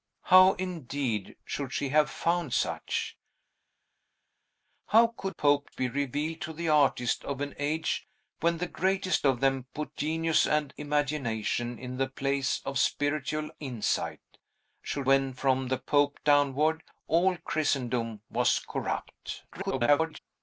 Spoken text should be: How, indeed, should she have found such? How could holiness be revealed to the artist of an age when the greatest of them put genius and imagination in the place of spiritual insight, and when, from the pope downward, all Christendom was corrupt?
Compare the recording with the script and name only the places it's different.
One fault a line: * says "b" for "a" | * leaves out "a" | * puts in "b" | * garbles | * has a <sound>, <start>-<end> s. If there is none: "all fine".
* says "pope" for "holiness"
* says "should" for "and"
* garbles